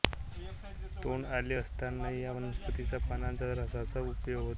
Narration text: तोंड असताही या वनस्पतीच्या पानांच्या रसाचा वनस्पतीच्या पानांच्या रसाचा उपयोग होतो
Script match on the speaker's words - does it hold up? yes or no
no